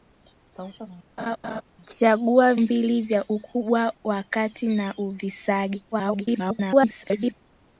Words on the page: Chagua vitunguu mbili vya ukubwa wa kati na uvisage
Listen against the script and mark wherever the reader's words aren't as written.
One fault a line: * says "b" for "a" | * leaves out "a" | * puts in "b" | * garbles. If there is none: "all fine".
* leaves out "vitunguu"
* garbles